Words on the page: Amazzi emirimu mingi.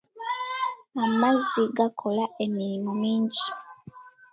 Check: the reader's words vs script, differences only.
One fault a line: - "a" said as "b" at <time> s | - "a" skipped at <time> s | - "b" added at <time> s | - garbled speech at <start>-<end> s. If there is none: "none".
- "gakola" added at 1.8 s